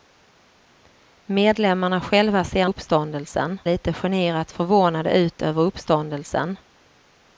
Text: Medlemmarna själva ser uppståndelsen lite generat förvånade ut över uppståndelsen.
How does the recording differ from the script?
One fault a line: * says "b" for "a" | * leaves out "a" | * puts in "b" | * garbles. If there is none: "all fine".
all fine